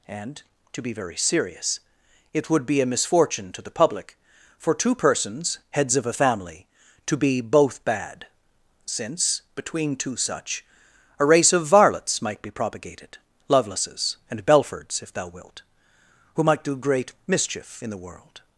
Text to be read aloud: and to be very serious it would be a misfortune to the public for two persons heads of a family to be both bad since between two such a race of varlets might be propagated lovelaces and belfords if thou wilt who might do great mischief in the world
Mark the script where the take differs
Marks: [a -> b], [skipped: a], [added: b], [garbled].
and to be very serious it would be a misfortune to the public for two persons heads of a family to be both bad since between two such a race of varlets might be propagated lovelaces and belfords if thou wilt who might do great mischief in the world